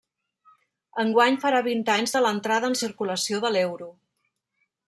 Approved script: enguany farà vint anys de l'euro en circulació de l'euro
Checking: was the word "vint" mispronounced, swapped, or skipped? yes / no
no